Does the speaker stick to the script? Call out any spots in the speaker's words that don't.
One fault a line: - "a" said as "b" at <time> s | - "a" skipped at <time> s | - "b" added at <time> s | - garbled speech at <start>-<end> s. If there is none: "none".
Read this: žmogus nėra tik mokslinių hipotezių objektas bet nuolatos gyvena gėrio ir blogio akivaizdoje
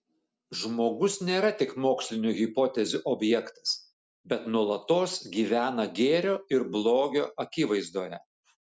none